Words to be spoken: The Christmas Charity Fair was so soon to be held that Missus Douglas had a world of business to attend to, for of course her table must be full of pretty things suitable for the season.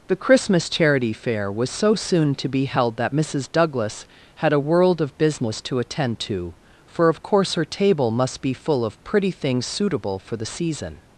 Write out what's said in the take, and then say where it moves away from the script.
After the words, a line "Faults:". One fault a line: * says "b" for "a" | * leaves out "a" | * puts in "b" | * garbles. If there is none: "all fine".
The Christmas Charity Fair was so soon to be held that Missus Douglas had a world of business to attend to, for of course her table must be full of pretty things suitable for the season.
Faults:
all fine